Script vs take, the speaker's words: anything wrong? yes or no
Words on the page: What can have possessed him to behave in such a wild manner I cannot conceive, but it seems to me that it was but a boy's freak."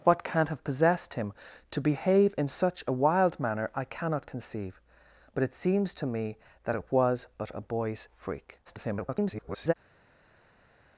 yes